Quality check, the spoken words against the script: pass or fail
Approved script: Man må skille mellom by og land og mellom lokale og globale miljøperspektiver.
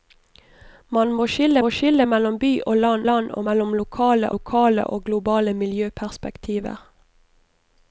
fail